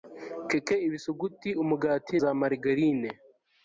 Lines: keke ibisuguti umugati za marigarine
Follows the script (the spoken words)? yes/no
yes